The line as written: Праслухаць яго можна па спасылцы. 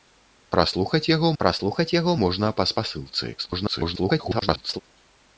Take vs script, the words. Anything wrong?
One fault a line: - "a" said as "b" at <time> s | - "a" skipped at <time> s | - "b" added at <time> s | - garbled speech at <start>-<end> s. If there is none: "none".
- "праслухаць яго" added at 1.4 s
- garbled speech at 3.4-4.8 s